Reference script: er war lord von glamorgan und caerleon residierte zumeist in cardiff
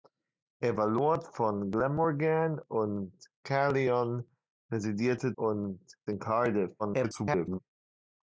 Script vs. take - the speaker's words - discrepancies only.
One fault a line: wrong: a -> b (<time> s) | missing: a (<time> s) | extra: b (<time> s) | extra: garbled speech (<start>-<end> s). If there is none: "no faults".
wrong: zumeist -> und (5.3 s)
extra: garbled speech (6.8-7.6 s)